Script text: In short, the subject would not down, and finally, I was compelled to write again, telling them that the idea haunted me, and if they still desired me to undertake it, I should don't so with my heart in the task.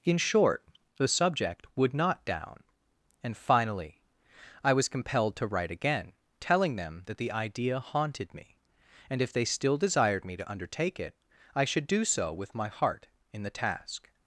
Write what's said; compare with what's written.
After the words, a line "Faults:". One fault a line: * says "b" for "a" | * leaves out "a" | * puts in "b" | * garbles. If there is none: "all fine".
In short, the subject would not down, and finally, I was compelled to write again, telling them that the idea haunted me, and if they still desired me to undertake it, I should do so with my heart in the task.
Faults:
* says "do" for "don't"